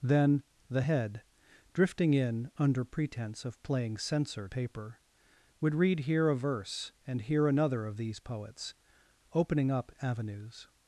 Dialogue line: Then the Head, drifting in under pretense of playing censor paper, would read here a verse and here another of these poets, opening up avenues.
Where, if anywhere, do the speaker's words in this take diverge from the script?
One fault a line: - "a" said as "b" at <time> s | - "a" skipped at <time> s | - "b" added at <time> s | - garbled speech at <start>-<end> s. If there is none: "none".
none